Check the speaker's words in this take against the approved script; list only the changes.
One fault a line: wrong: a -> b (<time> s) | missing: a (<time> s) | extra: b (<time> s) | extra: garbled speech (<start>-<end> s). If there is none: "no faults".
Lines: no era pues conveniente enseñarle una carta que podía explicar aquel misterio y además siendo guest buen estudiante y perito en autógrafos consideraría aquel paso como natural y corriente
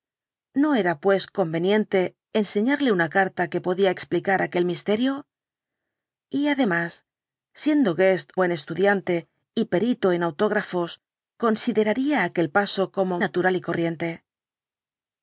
no faults